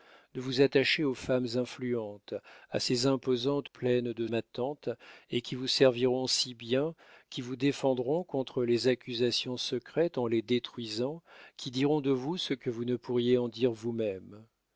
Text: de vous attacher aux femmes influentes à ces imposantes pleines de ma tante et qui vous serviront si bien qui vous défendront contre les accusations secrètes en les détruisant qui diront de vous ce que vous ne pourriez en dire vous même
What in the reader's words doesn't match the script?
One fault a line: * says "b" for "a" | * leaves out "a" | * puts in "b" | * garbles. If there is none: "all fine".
all fine